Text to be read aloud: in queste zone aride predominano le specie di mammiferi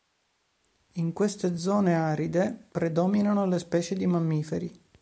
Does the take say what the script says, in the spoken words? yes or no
yes